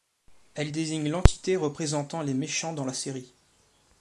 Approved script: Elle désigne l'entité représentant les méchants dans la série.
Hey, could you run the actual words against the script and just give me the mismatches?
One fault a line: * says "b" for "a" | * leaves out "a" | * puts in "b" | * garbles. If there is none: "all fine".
all fine